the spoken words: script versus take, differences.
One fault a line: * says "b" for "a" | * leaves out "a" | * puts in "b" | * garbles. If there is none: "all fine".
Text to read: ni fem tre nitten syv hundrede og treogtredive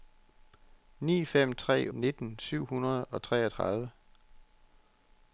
all fine